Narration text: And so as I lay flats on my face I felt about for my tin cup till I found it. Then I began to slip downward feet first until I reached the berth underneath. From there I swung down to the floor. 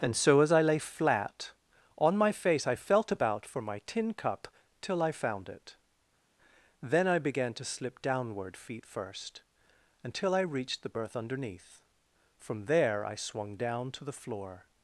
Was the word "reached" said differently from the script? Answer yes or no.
no